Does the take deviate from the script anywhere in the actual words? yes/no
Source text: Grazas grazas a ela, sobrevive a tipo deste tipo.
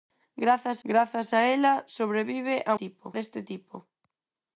no